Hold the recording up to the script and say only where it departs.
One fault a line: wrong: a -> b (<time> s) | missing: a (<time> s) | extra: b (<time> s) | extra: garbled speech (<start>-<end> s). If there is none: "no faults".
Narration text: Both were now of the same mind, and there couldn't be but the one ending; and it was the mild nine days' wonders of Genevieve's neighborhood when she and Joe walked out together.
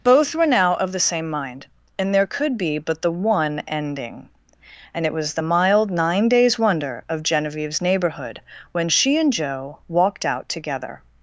wrong: couldn't -> could (2.2 s)
wrong: wonders -> wonder (6.6 s)